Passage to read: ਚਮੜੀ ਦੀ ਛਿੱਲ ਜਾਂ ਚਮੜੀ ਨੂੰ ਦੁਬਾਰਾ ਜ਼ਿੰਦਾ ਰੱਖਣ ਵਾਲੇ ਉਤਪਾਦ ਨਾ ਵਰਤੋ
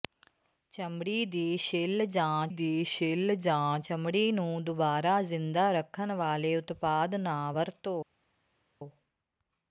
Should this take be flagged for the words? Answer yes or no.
yes